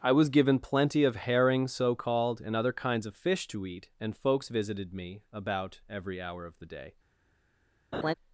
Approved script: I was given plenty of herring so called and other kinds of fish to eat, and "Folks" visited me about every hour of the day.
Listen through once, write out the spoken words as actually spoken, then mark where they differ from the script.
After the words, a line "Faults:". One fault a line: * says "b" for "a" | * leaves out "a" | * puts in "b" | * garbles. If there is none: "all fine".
I was given plenty of herring so called and other kinds of fish to eat, and "Folks" visited me about every hour of the day.
Faults:
all fine